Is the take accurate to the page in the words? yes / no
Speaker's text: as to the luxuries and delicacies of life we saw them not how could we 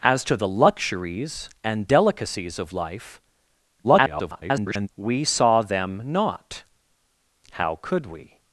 no